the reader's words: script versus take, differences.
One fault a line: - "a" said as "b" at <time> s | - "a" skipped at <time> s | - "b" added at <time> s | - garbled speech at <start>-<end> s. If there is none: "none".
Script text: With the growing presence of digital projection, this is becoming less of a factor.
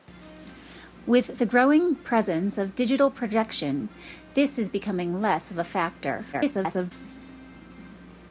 - garbled speech at 6.3-6.9 s